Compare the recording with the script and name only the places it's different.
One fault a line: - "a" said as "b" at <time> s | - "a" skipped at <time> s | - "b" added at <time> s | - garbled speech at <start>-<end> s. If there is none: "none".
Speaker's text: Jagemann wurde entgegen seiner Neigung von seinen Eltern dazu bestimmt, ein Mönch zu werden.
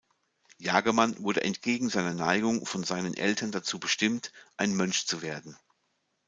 none